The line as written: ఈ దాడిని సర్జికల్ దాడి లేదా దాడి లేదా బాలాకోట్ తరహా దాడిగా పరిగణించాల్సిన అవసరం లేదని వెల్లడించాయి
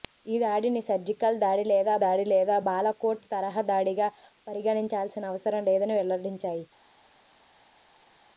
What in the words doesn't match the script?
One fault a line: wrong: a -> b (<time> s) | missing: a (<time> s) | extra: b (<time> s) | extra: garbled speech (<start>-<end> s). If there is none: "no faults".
no faults